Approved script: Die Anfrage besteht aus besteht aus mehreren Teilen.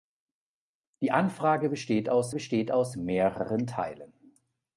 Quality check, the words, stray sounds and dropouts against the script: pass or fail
pass